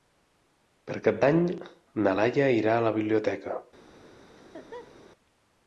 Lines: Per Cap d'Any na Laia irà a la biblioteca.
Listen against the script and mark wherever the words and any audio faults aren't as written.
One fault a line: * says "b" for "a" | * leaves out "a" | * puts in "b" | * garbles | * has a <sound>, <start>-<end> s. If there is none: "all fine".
* has a laugh, 4.4-5.0 s